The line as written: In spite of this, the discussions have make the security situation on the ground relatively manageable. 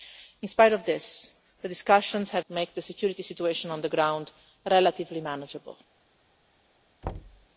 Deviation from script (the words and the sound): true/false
true